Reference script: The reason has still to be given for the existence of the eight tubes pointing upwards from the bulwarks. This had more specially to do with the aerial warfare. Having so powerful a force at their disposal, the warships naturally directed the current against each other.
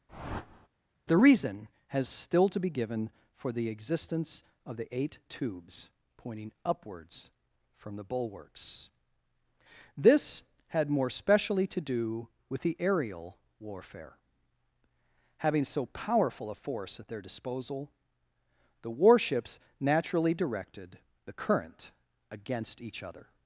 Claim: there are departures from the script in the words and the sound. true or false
true